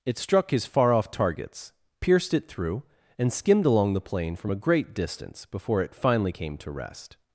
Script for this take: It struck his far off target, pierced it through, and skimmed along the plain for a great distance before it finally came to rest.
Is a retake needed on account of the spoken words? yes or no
yes